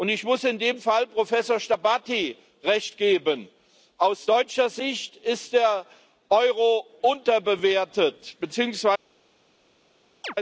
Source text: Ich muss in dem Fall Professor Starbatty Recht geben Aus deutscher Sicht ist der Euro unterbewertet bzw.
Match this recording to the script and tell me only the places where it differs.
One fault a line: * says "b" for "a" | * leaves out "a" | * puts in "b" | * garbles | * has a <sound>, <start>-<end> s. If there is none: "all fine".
* has a chirp, 10.2-10.3 s